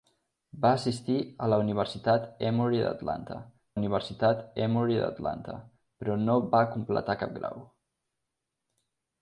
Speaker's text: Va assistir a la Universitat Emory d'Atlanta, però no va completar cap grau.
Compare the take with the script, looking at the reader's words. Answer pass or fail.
fail